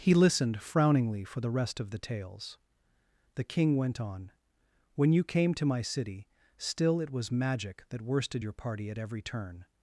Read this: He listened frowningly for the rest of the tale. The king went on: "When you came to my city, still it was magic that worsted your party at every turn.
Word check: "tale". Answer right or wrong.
wrong